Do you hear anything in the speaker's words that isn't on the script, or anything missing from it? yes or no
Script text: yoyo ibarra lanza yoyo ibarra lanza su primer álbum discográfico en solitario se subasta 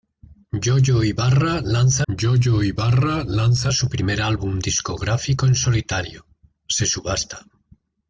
no